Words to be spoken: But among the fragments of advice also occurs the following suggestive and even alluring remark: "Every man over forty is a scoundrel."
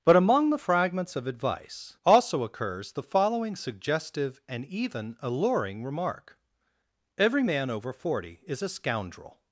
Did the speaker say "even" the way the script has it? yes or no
yes